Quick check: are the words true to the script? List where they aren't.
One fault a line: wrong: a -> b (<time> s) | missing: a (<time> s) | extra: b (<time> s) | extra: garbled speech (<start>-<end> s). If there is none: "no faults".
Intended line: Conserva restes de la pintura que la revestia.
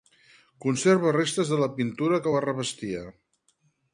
no faults